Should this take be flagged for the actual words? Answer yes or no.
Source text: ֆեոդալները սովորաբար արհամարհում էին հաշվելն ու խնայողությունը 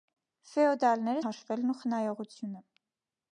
yes